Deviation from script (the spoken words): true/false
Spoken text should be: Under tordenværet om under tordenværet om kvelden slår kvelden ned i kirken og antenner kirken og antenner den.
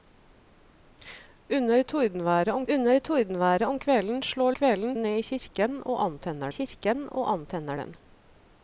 false